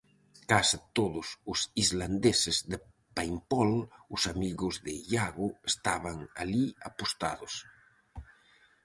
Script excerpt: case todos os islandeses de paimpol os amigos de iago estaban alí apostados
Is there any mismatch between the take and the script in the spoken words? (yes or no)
no